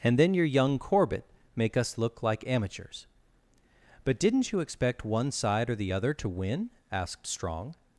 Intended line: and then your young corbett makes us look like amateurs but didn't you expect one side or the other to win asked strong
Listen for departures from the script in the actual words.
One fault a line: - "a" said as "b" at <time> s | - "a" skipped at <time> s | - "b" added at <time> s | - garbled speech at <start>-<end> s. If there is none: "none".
- "makes" said as "make" at 1.6 s